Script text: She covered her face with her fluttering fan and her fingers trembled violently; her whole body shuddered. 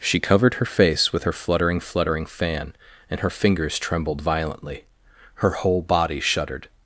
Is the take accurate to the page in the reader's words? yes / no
no